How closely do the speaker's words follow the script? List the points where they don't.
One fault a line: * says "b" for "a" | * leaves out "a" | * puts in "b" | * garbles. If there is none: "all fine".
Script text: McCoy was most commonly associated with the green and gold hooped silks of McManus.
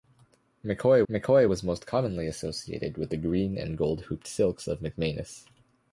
* puts in "mccoy"